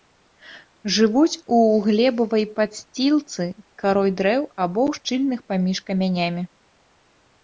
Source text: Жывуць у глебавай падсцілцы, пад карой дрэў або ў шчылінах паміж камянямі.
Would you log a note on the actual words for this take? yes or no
yes